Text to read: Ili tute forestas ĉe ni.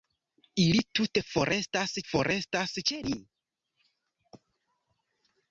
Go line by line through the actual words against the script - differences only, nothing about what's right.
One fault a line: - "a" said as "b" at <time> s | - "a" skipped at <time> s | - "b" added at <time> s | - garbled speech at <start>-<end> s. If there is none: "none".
- "forestas" added at 2.1 s